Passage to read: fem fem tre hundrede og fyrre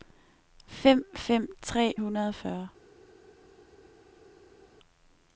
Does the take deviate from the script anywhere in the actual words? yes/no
no